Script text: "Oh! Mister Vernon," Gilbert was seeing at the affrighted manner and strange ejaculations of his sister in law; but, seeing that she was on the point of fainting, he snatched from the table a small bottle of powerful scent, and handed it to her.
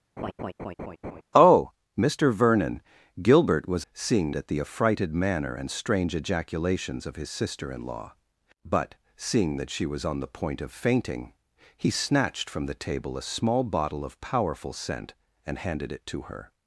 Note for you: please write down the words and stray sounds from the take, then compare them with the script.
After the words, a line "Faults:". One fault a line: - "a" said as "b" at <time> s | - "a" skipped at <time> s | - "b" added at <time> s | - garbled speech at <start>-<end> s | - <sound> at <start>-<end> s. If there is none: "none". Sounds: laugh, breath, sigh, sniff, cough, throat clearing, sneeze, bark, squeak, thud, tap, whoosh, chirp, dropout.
"Oh! Mister Vernon," Gilbert was seeing at the affrighted manner and strange ejaculations of his sister in law; but, seeing that she was on the point of fainting, he snatched from the table a small bottle of powerful scent, and handed it to her.
Faults:
- laugh at 0.2-1.2 s